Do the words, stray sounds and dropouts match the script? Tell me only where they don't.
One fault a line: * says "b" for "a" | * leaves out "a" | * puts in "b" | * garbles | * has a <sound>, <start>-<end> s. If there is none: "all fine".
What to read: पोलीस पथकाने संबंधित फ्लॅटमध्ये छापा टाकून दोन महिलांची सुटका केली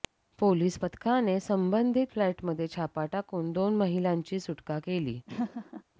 * has a laugh, 5.3-5.8 s